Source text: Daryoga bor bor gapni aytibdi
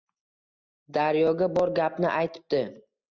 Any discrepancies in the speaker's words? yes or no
yes